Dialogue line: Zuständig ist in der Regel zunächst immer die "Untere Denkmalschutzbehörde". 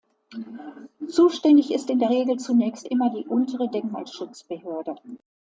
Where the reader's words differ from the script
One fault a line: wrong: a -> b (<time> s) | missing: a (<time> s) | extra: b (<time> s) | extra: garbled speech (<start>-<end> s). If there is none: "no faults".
no faults